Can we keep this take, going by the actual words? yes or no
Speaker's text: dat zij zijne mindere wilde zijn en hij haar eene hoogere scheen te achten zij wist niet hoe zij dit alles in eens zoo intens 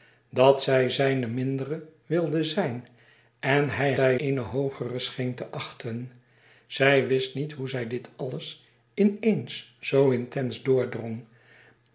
no